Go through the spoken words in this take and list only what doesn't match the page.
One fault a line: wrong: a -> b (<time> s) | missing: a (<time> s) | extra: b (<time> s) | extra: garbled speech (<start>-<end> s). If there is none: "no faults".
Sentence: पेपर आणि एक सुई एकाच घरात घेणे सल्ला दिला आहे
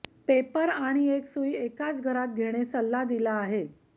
no faults